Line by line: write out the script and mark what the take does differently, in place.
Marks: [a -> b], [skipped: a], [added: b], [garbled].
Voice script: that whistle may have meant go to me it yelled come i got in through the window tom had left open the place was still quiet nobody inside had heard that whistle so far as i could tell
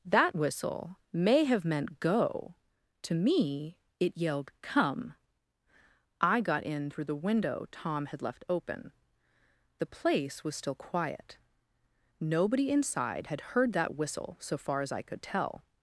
that whistle may have meant go to me it yelled come i got in through the window tom had left open the place was still quiet nobody inside had heard that whistle so far as i could tell